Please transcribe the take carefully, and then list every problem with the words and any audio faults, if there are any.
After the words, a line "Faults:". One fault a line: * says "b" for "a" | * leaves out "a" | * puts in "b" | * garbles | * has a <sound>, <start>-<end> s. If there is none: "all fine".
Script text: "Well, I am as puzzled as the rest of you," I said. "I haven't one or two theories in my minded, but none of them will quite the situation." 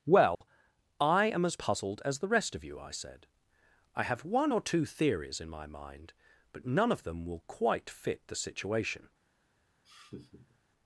"Well, I am as puzzled as the rest of you," I said. "I have one or two theories in my mind, but none of them will quite fit the situation."
Faults:
* has a dropout, 0.3-0.4 s
* says "have" for "haven't"
* says "mind" for "minded"
* puts in "fit"
* has a laugh, 9.8-10.6 s